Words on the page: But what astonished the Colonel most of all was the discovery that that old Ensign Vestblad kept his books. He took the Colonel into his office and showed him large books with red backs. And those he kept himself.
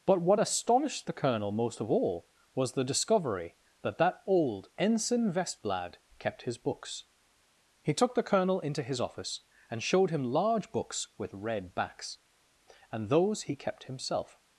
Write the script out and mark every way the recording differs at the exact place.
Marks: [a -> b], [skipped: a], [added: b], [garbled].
But what astonished the Colonel most of all was the discovery that that old Ensign Vestblad kept his books. He took the Colonel into his office and showed him large books with red backs. And those he kept himself.